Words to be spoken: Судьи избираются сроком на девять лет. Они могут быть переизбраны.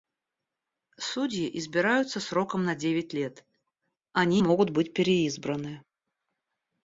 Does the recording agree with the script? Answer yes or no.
yes